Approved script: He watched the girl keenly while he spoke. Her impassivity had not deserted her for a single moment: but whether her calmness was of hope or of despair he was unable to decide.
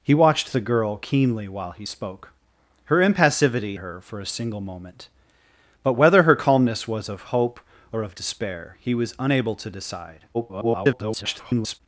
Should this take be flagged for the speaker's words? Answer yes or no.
yes